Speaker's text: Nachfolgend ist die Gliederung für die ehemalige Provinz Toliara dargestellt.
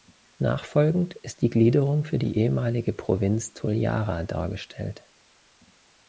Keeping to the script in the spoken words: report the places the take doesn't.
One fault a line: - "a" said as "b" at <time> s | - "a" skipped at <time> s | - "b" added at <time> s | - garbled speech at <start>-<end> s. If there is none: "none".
none